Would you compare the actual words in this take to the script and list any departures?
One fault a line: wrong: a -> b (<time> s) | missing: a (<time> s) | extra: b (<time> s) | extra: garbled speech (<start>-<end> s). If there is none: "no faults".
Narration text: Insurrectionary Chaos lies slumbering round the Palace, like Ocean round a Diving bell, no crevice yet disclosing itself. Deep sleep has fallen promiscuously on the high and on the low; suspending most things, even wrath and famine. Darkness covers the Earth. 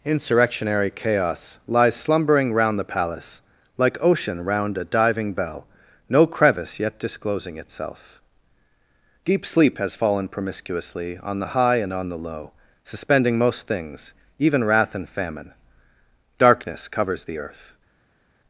no faults